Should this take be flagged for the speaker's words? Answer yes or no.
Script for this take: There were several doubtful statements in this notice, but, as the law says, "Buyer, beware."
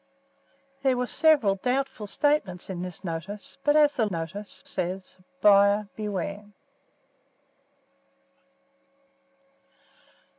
yes